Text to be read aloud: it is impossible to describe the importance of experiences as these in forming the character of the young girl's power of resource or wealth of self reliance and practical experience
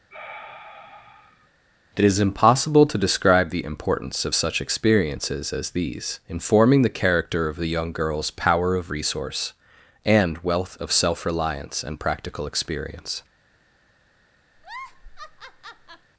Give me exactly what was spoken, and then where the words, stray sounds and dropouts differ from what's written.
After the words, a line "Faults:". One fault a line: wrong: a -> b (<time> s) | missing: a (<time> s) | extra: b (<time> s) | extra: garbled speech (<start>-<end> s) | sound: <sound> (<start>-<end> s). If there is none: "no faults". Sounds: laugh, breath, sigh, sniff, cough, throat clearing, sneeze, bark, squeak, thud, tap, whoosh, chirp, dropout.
it is impossible to describe the importance of such experiences as these in forming the character of the young girl's power of resource and wealth of self reliance and practical experience
Faults:
sound: sigh (0.1-1.5 s)
extra: such (4.3 s)
wrong: or -> and (10.1 s)
sound: laugh (14.6-16.1 s)